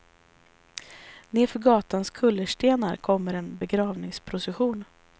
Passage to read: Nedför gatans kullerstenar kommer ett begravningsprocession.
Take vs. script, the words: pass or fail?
fail